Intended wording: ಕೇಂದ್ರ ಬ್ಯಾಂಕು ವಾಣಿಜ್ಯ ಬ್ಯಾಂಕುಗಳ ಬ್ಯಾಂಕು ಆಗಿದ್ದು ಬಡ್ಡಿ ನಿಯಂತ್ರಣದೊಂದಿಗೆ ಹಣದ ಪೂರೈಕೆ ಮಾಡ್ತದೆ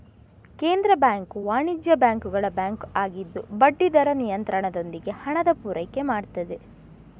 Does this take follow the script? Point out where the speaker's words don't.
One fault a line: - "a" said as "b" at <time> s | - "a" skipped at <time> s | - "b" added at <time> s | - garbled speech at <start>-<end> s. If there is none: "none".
- "ದರ" added at 4.0 s